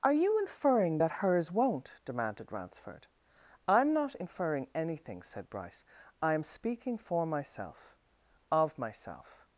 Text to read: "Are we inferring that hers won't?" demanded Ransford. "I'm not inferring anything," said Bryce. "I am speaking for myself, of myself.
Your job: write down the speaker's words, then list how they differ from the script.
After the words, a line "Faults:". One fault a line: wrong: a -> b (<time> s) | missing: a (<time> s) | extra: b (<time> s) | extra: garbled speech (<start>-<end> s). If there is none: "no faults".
"Are you inferring that hers won't?" demanded Ransford. "I'm not inferring anything," said Bryce. "I am speaking for myself, of myself.
Faults:
wrong: we -> you (0.1 s)